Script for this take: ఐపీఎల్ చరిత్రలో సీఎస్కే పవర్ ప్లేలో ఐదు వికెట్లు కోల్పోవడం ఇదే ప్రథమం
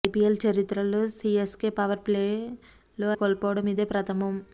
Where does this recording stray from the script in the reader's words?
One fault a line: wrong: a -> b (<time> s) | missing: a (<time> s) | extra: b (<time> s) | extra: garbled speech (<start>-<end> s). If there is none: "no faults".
missing: ఐదు వికెట్లు (3.1 s)